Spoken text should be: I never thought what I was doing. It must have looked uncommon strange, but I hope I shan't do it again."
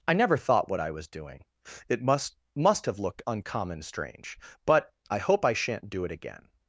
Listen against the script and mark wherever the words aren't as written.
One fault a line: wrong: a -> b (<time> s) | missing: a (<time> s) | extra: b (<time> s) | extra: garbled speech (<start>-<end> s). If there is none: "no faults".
extra: must (2.6 s)